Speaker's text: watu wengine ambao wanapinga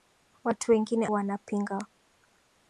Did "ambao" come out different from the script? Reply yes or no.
yes